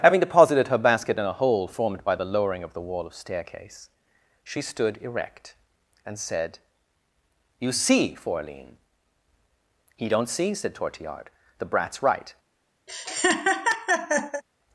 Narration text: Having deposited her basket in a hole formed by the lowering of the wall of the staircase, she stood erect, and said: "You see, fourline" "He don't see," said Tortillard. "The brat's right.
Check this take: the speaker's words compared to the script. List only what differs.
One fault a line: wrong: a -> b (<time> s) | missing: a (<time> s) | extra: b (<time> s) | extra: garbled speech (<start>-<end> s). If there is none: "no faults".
missing: the (3.1 s)